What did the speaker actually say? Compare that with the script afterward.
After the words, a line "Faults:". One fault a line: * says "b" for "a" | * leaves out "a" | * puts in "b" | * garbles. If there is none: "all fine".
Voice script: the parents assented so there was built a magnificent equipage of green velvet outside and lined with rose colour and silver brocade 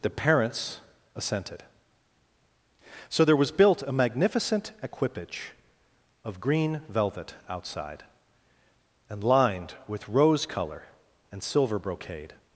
the parents assented so there was built a magnificent equipage of green velvet outside and lined with rose colour and silver brocade
Faults:
all fine